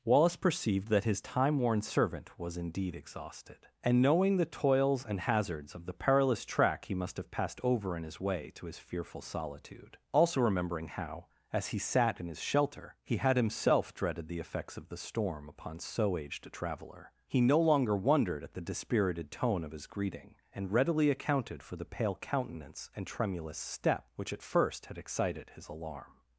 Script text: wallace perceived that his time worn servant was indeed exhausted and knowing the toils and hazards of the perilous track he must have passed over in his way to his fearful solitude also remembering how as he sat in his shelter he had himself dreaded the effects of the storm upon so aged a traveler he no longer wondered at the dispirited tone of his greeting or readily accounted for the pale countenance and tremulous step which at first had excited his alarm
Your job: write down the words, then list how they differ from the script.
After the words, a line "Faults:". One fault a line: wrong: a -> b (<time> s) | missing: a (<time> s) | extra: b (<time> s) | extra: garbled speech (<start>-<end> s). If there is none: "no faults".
wallace perceived that his time worn servant was indeed exhausted and knowing the toils and hazards of the perilous track he must have passed over in his way to his fearful solitude also remembering how as he sat in his shelter he had himself dreaded the effects of the storm upon so aged a traveler he no longer wondered at the dispirited tone of his greeting and readily accounted for the pale countenance and tremulous step which at first had excited his alarm
Faults:
wrong: or -> and (20.5 s)